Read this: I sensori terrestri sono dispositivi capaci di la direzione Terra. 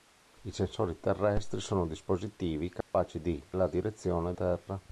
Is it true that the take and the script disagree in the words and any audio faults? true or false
true